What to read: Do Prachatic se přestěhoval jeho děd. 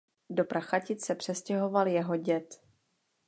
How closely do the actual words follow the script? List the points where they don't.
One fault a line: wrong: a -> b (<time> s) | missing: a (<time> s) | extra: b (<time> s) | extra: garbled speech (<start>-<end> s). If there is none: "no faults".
no faults